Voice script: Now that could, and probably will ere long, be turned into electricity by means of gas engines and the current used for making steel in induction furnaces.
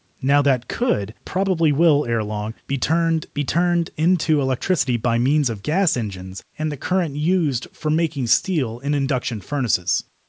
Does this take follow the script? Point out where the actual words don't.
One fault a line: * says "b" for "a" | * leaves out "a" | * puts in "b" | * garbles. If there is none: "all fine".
* leaves out "and"
* puts in "be turned"